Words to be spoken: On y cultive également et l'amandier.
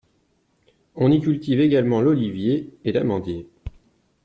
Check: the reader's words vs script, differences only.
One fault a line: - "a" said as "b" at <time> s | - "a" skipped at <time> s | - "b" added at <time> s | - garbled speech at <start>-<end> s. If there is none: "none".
- "l'olivier" added at 2.0 s